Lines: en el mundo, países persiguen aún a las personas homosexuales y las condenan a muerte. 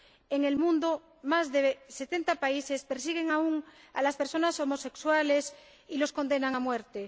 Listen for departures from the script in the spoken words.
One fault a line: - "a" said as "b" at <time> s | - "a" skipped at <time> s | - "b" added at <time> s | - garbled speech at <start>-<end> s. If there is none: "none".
- "más de setenta" added at 1.2 s